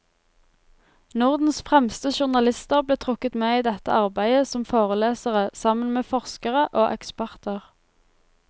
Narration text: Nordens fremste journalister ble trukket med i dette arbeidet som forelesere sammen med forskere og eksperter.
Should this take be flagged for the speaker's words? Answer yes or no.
no